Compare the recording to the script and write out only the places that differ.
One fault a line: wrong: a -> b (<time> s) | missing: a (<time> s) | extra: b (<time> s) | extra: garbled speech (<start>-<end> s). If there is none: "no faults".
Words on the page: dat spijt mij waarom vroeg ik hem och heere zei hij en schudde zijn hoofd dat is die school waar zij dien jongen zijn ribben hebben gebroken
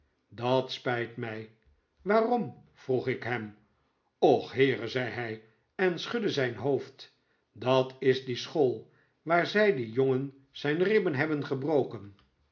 no faults